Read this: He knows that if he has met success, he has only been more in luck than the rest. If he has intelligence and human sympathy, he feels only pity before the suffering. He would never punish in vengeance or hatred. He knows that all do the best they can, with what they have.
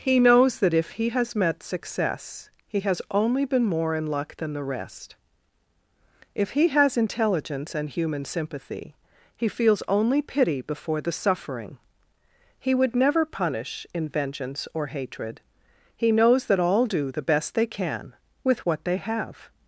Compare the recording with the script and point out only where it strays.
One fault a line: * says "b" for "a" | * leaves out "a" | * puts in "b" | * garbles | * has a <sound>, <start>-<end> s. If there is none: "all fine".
all fine